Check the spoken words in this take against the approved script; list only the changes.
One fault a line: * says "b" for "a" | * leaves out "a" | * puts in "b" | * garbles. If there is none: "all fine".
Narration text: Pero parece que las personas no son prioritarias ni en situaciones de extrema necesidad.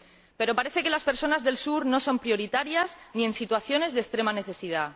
* puts in "del Sur"